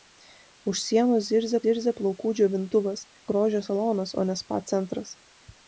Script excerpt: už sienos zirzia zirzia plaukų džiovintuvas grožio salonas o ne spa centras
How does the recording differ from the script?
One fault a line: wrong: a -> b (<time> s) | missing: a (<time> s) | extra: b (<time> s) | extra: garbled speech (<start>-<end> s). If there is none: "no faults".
no faults